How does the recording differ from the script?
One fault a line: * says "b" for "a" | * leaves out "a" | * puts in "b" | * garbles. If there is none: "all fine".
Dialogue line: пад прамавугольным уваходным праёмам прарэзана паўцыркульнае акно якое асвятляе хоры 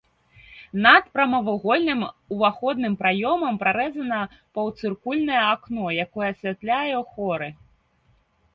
* says "над" for "пад"